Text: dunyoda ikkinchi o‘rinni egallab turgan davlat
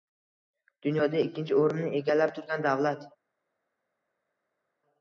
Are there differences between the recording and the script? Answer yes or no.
no